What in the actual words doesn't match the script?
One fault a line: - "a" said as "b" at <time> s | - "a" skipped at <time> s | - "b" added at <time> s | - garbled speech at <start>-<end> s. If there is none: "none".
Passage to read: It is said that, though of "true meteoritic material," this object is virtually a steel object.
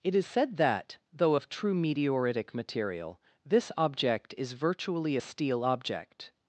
none